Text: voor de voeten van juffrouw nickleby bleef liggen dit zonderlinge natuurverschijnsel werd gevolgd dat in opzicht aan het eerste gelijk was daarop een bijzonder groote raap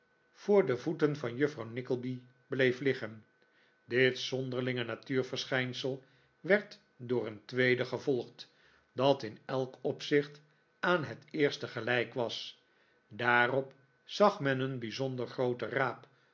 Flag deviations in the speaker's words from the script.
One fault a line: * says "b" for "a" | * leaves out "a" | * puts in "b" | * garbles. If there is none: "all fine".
* puts in "door een tweede"
* puts in "elk"
* puts in "zag men"